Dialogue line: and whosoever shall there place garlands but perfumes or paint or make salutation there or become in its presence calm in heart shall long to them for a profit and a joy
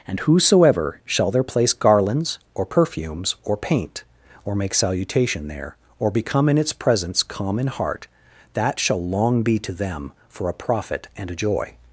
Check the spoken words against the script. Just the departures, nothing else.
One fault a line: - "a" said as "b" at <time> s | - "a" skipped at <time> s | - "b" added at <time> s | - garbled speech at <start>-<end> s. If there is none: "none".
- "but" said as "or" at 2.5 s
- "that" added at 8.5 s
- "be" added at 9.4 s